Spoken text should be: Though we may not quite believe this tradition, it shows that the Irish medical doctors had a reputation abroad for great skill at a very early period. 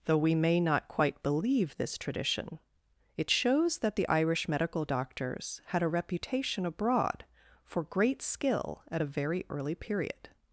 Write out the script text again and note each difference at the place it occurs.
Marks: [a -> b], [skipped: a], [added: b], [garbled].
Though we may not quite believe this tradition, it shows that the Irish medical doctors had a reputation abroad for great skill at a very early period.